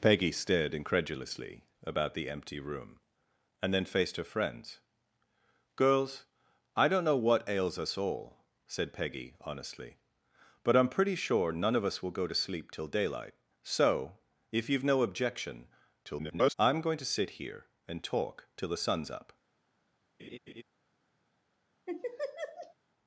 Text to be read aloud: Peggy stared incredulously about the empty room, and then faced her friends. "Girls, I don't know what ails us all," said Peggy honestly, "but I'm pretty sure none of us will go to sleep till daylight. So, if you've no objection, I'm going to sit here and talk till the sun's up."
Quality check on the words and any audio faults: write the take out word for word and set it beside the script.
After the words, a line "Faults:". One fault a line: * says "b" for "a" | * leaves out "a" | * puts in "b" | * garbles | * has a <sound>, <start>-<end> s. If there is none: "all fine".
Peggy stared incredulously about the empty room, and then faced her friends. "Girls, I don't know what ails us all," said Peggy honestly, "but I'm pretty sure none of us will go to sleep till daylight. So, if you've no objection, [garbled] I'm going to sit here and talk till the sun's up."
Faults:
* garbles
* has a laugh, 20.2-20.6 s
* has a laugh, 21.9-22.7 s